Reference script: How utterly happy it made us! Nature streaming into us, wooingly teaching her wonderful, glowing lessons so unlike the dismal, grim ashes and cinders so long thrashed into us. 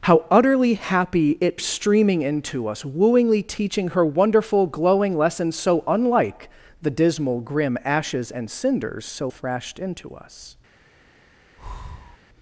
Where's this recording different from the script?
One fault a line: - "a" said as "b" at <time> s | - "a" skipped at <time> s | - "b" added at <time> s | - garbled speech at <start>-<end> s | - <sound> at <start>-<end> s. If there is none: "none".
- "made us Nature" skipped at 1.6 s
- "long" skipped at 9.3 s
- breath at 11.6-12.2 s